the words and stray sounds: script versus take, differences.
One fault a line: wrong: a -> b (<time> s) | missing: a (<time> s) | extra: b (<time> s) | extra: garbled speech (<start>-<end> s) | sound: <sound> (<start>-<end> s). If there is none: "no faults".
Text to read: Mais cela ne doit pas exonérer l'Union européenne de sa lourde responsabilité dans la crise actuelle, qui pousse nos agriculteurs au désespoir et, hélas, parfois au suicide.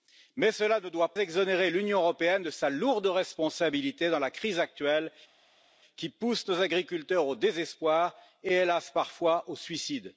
missing: pas (1.1 s)